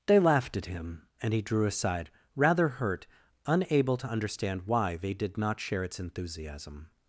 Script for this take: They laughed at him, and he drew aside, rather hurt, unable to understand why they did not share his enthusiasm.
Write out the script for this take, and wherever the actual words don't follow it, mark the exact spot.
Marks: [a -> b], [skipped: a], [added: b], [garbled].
They laughed at him, and he drew aside, rather hurt, unable to understand why they did not share [his -> its] enthusiasm.